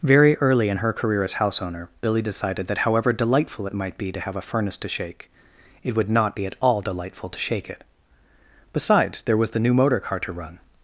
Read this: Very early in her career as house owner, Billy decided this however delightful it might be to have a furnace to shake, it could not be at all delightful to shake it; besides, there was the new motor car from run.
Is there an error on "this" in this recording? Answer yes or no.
yes